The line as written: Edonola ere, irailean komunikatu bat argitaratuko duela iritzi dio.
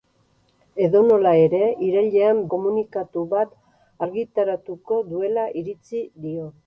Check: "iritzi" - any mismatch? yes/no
no